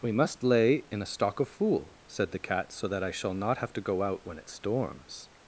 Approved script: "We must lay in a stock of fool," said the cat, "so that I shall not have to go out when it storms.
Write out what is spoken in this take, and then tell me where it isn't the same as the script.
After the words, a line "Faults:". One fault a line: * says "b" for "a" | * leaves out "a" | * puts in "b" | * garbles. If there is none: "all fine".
"We must lay in a stock of fool," said the cat, "so that I shall not have to go out when it storms.
Faults:
all fine